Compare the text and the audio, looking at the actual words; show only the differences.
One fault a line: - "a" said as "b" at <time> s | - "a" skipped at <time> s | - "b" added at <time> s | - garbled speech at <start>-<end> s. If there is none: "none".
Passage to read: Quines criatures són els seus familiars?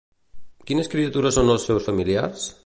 none